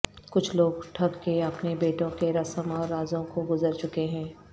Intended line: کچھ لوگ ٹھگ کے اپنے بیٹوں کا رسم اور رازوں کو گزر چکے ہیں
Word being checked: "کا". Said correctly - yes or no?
no